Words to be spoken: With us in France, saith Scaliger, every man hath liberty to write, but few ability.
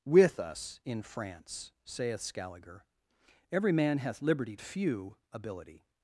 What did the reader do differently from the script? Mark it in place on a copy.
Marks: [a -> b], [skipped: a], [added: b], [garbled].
With us in France, saith Scaliger, every man hath liberty [skipped: to write, but] few ability.